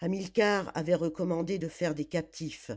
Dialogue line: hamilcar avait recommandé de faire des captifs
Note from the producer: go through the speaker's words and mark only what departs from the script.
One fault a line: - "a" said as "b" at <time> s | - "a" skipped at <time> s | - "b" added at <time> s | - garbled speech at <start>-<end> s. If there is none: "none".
none